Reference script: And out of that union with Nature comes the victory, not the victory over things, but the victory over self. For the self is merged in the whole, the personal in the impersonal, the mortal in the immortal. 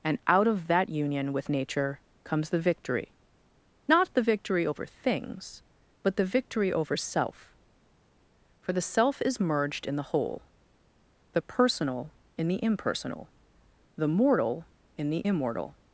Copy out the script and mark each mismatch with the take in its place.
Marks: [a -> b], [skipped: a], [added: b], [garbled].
And out of that union with Nature comes the victory, not the victory over things, but the victory over self. For the self is merged in the whole, the personal in the impersonal, the mortal in the immortal.